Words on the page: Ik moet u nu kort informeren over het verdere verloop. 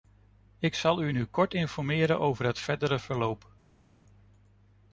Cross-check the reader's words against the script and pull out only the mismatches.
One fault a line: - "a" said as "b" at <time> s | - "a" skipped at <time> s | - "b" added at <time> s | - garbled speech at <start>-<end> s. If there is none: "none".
- "moet" said as "zal" at 0.8 s